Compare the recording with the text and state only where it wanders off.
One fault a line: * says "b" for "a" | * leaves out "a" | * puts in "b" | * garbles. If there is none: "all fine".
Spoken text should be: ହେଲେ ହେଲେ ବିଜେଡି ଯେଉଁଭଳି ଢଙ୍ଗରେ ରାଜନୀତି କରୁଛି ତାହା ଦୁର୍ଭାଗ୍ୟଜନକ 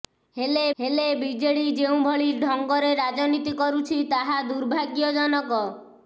all fine